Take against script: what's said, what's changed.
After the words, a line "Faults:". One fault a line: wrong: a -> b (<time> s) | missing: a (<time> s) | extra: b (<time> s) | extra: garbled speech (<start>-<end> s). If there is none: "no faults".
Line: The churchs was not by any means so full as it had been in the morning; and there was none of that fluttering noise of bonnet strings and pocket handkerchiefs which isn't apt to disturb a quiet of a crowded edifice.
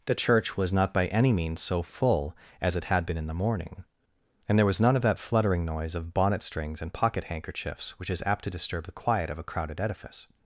The church was not by any means so full as it had been in the morning; and there was none of that fluttering noise of bonnet strings and pocket handkerchiefs which is apt to disturb the quiet of a crowded edifice.
Faults:
wrong: churchs -> church (0.1 s)
wrong: isn't -> is (8.1 s)
wrong: a -> the (8.8 s)